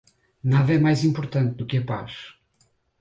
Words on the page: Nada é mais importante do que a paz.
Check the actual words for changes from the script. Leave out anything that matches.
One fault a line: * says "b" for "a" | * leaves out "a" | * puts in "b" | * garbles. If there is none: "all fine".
all fine